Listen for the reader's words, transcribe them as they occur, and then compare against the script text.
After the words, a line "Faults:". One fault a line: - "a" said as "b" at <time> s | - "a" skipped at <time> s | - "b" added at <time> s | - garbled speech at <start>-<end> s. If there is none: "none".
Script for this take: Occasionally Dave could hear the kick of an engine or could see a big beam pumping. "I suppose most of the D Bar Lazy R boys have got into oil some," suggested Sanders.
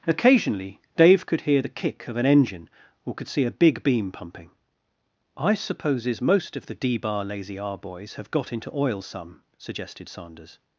Occasionally Dave could hear the kick of an engine or could see a big beam pumping. "I supposes most of the D Bar Lazy R boys have got into oil some," suggested Sanders.
Faults:
- "suppose" said as "supposes" at 5.6 s